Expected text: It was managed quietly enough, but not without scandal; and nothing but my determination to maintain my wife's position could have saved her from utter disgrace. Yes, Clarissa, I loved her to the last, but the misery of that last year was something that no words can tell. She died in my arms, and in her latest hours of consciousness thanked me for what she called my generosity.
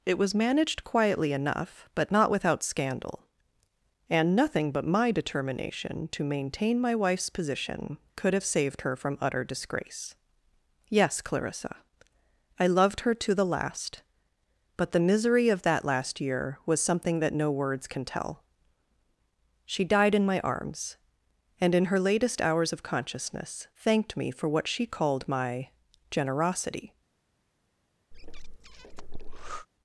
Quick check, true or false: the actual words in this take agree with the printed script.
true